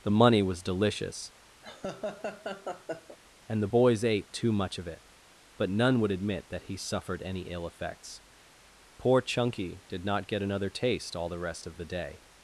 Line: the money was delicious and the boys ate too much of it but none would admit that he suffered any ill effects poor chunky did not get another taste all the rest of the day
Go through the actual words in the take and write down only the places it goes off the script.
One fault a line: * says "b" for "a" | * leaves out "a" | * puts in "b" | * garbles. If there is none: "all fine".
all fine